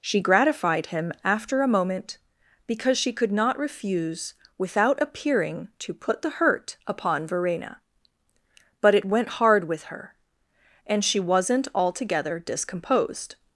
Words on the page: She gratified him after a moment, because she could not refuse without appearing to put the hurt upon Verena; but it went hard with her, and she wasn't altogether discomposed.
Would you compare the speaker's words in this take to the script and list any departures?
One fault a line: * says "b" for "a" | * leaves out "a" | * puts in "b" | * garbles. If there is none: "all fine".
all fine